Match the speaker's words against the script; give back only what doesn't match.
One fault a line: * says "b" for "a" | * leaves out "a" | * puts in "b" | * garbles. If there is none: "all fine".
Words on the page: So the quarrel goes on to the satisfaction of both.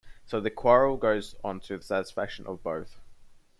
all fine